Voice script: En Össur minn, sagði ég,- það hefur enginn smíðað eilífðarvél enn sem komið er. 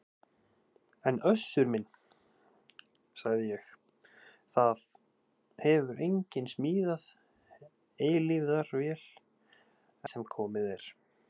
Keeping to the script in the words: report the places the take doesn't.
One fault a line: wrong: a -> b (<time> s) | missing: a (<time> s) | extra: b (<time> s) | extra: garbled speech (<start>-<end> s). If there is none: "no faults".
missing: enn (9.1 s)